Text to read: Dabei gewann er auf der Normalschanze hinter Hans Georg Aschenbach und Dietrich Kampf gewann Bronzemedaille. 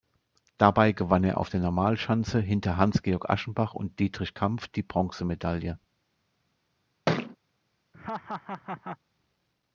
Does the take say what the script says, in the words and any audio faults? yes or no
no